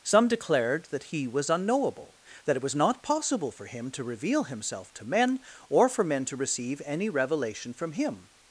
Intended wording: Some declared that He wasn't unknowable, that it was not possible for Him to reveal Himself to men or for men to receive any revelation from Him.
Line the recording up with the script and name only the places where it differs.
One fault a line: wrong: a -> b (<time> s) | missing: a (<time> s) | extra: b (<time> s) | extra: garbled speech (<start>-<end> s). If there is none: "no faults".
wrong: wasn't -> was (1.3 s)